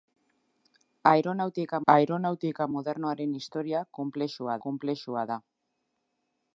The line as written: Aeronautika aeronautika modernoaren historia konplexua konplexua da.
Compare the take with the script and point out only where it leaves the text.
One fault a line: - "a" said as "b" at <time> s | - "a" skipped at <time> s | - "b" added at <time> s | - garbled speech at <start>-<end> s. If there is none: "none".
none